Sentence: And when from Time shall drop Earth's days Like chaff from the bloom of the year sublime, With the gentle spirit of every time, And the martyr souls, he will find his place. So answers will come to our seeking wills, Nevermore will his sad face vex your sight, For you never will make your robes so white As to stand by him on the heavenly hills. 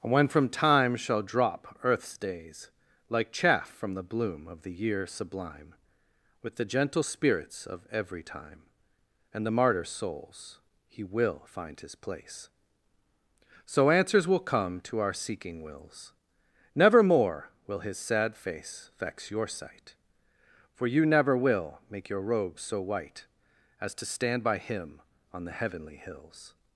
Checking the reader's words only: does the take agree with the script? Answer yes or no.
no